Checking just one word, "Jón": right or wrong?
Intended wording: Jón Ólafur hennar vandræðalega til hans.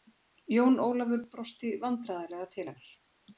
right